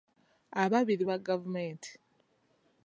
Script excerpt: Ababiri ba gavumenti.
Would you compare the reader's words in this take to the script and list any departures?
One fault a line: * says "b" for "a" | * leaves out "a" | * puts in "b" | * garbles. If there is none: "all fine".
all fine